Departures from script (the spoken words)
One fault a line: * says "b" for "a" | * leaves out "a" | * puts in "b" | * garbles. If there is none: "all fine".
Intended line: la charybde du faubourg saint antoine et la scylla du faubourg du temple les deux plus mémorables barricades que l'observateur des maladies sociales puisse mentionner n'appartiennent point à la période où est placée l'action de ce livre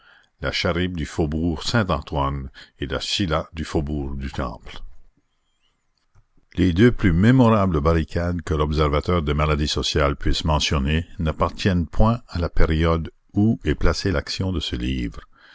all fine